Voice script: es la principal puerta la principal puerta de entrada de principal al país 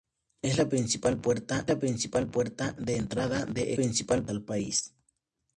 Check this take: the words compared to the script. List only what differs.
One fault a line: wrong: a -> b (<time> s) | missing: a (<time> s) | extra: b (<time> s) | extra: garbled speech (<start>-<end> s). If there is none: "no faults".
no faults